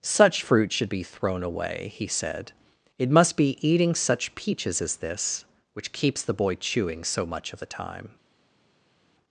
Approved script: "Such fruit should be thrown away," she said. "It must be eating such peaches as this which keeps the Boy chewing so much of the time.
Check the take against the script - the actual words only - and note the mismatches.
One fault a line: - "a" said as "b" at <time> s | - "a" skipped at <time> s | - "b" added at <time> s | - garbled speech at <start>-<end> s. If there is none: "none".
- "she" said as "he" at 1.9 s